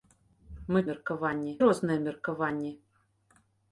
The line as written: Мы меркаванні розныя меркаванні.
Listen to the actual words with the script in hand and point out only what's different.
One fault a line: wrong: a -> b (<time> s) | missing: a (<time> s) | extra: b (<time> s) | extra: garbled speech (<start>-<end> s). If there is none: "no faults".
no faults